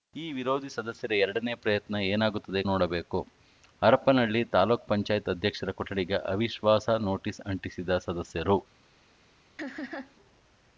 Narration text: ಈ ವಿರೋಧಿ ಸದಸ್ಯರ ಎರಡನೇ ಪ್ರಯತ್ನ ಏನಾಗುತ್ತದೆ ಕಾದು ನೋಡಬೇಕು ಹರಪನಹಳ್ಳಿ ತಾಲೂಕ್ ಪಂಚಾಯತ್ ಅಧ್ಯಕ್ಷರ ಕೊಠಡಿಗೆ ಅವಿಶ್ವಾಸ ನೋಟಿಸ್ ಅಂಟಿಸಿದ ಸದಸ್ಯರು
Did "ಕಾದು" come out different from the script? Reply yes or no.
yes